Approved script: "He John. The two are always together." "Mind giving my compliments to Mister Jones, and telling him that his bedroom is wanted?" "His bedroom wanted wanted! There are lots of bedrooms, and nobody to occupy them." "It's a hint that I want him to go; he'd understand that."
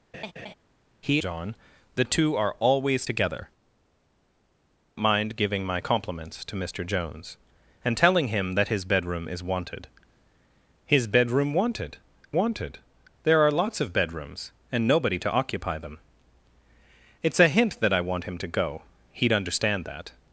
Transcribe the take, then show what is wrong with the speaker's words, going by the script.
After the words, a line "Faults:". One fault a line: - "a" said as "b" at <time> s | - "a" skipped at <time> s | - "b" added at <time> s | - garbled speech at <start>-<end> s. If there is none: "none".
"He John. The two are always together." "Mind giving my compliments to Mister Jones, and telling him that his bedroom is wanted?" "His bedroom wanted wanted! There are lots of bedrooms, and nobody to occupy them." "It's a hint that I want him to go; he'd understand that."
Faults:
none